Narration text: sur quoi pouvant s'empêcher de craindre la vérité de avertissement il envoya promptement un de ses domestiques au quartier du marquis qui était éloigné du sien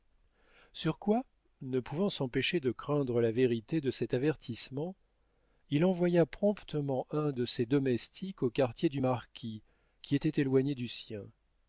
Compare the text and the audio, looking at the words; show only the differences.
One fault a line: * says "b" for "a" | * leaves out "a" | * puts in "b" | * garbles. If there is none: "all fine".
* puts in "ne"
* puts in "cet"